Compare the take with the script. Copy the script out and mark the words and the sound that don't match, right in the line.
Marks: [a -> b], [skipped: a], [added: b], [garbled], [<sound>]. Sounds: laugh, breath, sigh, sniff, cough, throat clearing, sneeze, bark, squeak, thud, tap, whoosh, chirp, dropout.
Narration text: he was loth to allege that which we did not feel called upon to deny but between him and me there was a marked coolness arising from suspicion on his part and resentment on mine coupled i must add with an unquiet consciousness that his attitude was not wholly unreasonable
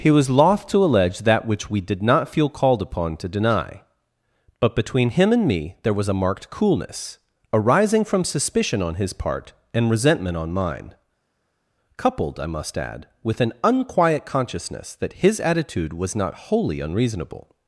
he was loth to allege that which we did not feel called upon to deny but between him and me there was a marked coolness arising from suspicion on his part and resentment on mine coupled i must add with an unquiet consciousness that his attitude was not wholly unreasonable